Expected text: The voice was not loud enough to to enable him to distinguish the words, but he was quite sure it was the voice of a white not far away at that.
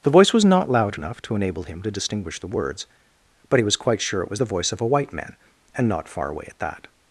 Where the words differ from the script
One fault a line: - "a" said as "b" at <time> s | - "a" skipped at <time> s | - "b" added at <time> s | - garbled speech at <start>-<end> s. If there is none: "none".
- "to" skipped at 1.4 s
- "man and" added at 5.1 s